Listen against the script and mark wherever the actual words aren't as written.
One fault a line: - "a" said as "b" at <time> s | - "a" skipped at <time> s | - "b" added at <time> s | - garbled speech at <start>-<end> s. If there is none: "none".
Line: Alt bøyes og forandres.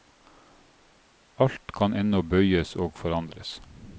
- "kan ennå" added at 1.8 s